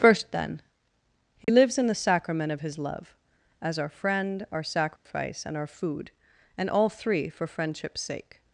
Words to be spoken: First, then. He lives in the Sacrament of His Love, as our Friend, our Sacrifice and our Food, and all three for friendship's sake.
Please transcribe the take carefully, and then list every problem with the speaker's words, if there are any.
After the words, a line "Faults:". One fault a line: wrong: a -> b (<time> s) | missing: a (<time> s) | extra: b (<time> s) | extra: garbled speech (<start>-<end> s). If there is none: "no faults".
First, then. He lives in the Sacrament of His Love, as our Friend, our Sacrifice and our Food, and all three for friendship's sake.
Faults:
no faults